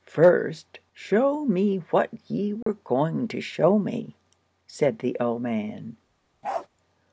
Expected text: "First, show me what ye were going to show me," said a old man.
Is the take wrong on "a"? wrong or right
wrong